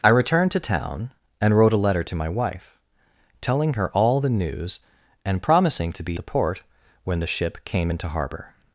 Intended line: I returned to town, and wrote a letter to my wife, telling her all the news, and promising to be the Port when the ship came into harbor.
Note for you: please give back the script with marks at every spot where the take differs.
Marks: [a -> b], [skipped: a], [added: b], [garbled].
I returned to town, and wrote a letter to my wife, telling her all the news, and promising to be the Port when the ship came into harbor.